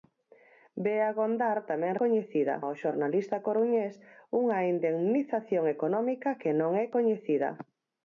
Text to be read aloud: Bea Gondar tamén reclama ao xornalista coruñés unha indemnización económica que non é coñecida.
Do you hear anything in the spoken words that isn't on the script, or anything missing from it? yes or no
yes